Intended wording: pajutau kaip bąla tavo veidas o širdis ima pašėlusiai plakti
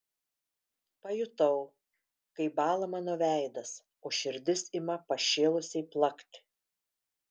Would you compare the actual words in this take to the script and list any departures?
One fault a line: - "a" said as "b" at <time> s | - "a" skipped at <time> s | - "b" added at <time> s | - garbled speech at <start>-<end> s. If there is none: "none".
- "tavo" said as "mano" at 2.9 s